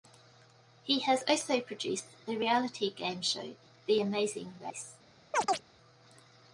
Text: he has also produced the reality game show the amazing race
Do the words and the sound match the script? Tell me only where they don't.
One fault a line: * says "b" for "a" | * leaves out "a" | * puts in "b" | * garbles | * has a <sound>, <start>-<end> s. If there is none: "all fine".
* has a chirp, 5.3-5.6 s